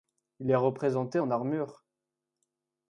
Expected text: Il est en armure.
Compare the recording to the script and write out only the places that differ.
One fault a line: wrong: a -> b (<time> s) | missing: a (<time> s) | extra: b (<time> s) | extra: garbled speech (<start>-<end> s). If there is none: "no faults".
extra: représenté (0.6 s)